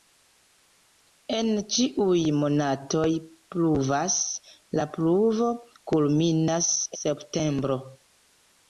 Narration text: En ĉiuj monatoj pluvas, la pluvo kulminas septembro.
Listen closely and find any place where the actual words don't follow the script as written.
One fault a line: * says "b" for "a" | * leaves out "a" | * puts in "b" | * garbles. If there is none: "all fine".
all fine